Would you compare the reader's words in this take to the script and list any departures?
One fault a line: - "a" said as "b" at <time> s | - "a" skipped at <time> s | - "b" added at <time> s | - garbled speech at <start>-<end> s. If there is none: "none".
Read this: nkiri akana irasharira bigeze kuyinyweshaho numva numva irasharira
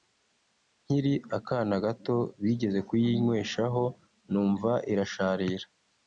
- "irasharira" said as "gato" at 1.9 s
- "numva" skipped at 4.7 s